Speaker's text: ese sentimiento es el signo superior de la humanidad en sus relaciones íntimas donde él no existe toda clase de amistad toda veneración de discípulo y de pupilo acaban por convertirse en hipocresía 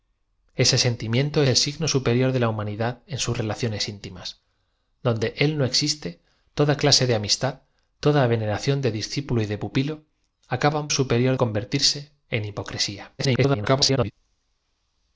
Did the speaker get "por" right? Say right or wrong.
wrong